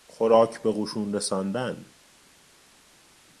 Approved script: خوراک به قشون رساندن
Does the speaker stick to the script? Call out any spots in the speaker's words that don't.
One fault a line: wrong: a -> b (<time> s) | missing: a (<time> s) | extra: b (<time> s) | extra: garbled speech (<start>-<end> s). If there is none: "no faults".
no faults